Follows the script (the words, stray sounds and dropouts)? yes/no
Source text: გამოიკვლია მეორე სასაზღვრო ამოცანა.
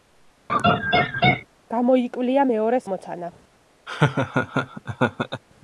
no